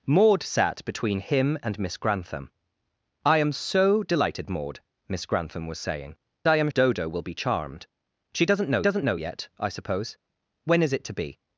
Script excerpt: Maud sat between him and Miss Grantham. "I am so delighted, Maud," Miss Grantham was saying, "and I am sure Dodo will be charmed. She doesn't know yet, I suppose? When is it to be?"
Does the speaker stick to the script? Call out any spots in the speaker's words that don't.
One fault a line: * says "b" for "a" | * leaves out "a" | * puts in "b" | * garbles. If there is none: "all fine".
* leaves out "and"
* leaves out "sure"
* puts in "doesn't know"